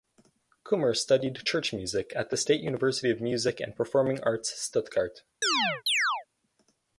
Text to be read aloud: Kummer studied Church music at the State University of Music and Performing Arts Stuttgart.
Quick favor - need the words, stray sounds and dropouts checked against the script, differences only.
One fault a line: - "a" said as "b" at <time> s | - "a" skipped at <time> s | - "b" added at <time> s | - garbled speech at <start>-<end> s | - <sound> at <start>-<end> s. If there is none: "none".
- chirp at 5.4-6.3 s